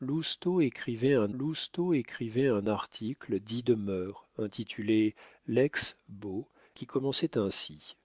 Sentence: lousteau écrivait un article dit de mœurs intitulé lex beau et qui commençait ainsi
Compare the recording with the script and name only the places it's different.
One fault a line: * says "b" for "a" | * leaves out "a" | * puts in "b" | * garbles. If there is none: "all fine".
* puts in "lousteau écrivait un"
* leaves out "et"